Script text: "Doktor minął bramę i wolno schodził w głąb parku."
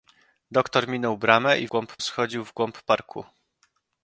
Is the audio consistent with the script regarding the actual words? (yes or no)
no